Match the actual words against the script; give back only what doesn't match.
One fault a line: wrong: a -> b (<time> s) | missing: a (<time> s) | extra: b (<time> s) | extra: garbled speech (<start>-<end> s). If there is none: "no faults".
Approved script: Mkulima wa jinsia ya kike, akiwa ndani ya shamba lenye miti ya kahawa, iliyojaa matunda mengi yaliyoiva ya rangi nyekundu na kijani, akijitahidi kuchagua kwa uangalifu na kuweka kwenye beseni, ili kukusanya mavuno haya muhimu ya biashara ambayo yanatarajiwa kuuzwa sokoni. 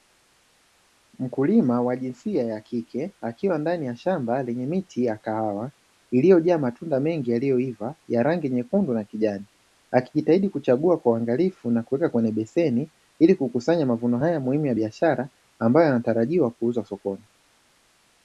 no faults